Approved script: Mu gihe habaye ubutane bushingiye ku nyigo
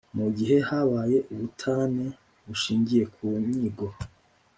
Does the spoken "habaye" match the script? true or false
true